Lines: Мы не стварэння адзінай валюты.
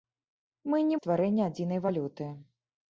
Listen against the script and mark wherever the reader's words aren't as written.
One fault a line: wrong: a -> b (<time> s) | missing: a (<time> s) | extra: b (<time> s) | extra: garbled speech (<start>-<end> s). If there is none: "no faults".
no faults